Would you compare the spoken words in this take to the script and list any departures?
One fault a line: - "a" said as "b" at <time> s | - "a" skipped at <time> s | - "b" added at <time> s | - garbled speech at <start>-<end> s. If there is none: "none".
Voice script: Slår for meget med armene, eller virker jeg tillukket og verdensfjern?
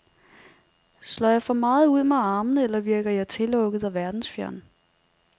- "jeg" added at 1.3 s
- "ud" added at 1.9 s